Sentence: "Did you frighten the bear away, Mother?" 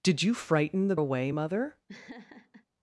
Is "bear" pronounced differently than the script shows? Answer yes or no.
yes